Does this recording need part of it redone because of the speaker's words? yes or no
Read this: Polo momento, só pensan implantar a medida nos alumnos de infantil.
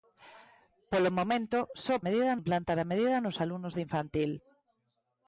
yes